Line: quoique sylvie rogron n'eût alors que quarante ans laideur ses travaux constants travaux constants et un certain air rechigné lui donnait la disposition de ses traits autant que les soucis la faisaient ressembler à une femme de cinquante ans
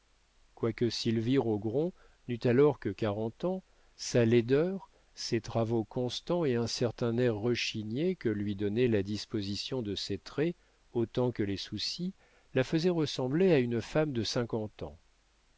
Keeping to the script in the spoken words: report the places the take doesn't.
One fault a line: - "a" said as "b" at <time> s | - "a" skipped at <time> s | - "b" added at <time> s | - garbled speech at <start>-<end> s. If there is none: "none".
- "sa" added at 4.0 s
- "travaux constants" skipped at 6.4 s
- "que" added at 8.2 s